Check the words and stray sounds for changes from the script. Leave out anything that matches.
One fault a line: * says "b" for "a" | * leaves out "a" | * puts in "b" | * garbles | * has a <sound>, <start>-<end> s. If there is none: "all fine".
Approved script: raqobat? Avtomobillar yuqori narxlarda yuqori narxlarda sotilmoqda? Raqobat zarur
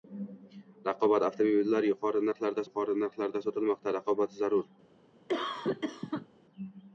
* has a cough, 5.3-6.3 s